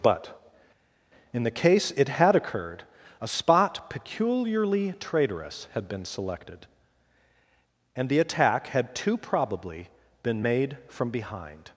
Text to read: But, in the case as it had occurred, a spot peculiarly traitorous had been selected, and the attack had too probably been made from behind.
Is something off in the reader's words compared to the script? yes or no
yes